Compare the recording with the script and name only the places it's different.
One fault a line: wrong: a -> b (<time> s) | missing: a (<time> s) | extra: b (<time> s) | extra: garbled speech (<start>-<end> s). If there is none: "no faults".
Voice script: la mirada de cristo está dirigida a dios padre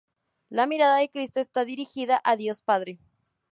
no faults